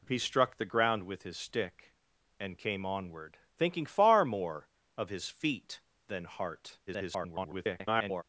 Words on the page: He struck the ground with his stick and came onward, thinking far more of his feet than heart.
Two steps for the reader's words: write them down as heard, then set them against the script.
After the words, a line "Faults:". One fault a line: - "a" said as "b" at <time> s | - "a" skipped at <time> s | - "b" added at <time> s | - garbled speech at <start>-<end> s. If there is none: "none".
He struck the ground with his stick and came onward, thinking far more of his feet than heart. [garbled]
Faults:
- garbled speech at 6.9-8.2 s